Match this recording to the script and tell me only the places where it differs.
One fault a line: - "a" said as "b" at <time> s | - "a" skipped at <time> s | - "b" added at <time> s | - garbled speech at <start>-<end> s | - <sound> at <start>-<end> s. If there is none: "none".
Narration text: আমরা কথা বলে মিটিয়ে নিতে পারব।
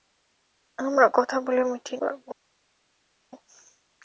- "নিতে" skipped at 2.0 s